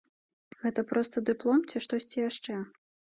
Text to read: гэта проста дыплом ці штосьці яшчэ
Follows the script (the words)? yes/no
yes